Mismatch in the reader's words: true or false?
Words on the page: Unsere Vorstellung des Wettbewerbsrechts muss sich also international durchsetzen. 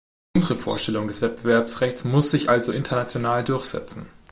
false